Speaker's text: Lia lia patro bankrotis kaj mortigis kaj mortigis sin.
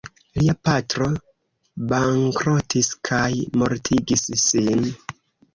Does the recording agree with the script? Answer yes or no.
no